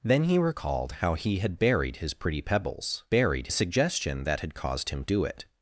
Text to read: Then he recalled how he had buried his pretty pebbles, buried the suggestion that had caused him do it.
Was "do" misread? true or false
false